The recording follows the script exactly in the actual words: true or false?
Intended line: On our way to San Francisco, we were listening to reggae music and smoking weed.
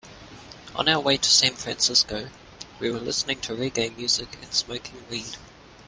true